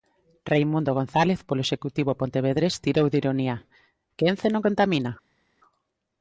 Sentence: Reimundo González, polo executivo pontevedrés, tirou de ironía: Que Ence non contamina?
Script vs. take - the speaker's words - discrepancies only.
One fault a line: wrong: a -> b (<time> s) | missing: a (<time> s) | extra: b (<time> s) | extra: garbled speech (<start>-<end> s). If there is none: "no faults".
no faults